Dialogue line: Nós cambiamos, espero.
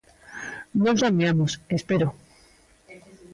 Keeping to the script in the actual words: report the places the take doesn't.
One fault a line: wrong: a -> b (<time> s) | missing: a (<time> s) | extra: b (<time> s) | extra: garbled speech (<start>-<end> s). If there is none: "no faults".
no faults